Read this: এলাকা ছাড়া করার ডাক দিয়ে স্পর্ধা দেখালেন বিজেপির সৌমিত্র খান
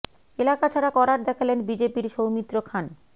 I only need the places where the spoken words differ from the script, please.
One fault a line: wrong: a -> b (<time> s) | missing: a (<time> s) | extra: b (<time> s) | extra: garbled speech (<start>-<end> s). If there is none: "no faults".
missing: ডাক দিয়ে স্পর্ধা (1.2 s)